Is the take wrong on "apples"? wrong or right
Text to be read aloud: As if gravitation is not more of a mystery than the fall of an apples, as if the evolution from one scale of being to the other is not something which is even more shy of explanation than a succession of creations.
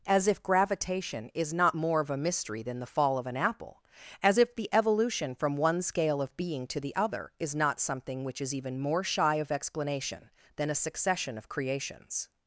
wrong